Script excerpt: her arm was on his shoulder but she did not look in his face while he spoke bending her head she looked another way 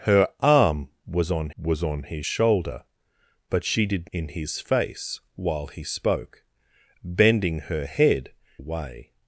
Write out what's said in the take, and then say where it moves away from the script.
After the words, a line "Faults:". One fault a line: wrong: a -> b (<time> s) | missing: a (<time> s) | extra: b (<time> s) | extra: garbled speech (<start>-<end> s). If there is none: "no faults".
her arm was on was on his shoulder but she did in his face while he spoke bending her head way
Faults:
extra: was on (1.6 s)
missing: not look (4.1 s)
missing: she looked another (8.3 s)